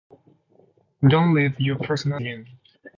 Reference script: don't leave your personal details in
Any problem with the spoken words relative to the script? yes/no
yes